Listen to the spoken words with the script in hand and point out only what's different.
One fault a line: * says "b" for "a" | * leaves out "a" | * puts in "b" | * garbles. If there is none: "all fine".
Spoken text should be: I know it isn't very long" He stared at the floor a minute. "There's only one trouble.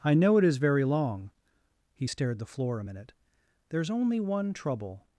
* says "is" for "isn't"
* leaves out "at"